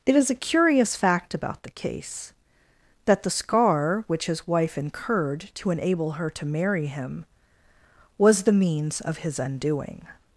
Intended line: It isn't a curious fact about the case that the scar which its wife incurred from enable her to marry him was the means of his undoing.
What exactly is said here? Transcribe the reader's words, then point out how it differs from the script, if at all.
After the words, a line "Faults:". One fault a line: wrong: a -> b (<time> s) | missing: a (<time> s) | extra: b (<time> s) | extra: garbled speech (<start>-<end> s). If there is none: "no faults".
It is a curious fact about the case that the scar which his wife incurred to enable her to marry him was the means of his undoing.
Faults:
wrong: isn't -> is (0.1 s)
wrong: its -> his (4.3 s)
wrong: from -> to (5.5 s)